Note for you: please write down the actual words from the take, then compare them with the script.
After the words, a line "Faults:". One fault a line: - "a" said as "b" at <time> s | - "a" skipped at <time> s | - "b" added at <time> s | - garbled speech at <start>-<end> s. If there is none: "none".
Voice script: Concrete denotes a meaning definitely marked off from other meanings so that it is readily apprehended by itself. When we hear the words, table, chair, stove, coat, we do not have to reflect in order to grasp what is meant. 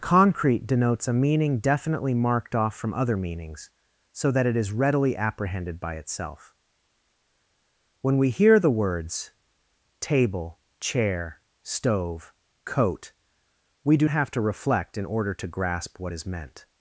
Concrete denotes a meaning definitely marked off from other meanings so that it is readily apprehended by itself. When we hear the words, table, chair, stove, coat, we do have to reflect in order to grasp what is meant.
Faults:
- "not" skipped at 14.1 s